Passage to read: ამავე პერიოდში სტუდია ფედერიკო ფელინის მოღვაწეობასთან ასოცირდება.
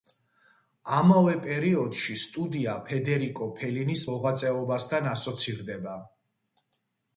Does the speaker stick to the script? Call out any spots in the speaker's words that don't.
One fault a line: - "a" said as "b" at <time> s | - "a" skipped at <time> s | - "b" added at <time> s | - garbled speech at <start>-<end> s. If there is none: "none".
none